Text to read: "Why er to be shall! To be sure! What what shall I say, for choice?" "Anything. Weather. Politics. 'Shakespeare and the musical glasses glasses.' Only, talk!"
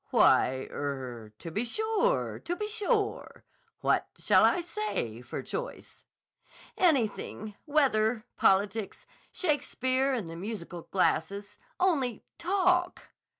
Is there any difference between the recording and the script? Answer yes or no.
yes